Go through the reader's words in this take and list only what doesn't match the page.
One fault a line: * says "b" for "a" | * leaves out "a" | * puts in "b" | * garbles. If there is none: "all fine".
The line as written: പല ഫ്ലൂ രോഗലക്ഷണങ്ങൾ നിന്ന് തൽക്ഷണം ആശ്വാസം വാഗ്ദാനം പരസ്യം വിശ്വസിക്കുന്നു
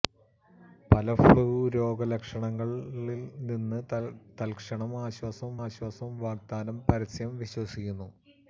* puts in "ആശ്വാസം"